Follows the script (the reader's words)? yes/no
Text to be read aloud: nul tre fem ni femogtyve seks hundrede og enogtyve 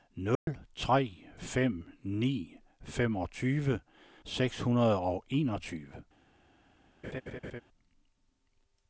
yes